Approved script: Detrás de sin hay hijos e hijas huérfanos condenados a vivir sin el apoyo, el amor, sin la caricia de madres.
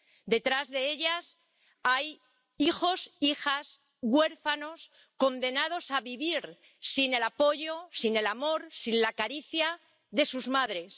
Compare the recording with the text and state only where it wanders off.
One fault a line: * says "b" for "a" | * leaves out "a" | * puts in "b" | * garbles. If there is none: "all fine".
* says "ellas" for "sin"
* puts in "sin"
* puts in "sus"